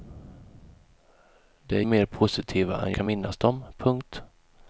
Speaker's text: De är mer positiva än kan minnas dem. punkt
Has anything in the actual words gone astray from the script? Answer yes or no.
no